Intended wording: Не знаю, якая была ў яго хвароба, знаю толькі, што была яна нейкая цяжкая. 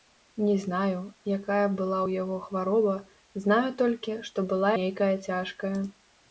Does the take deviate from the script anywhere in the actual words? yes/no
yes